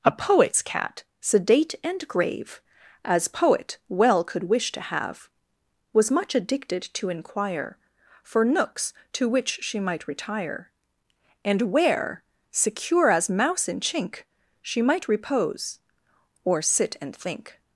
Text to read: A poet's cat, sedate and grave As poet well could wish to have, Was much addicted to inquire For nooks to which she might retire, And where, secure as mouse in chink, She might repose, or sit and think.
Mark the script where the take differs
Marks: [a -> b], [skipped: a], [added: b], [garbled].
A poet's cat, sedate and grave As poet well could wish to have, Was much addicted to inquire For nooks to which she might retire, And where, secure as mouse in chink, She might repose, or sit and think.